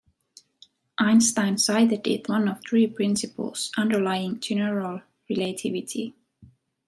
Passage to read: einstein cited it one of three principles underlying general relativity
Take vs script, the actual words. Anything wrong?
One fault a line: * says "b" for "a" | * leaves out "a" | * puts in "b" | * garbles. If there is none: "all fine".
all fine